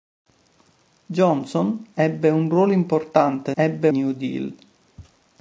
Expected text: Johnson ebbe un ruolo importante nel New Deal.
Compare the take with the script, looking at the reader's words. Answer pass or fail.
fail